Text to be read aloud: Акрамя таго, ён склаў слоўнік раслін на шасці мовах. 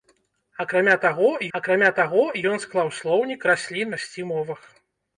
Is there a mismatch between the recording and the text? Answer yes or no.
yes